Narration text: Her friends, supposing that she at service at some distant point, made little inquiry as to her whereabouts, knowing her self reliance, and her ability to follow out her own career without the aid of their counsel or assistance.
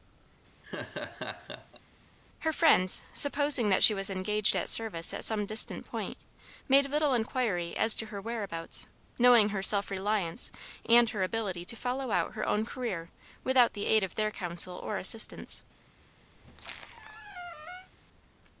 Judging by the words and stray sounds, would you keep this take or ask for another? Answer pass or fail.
fail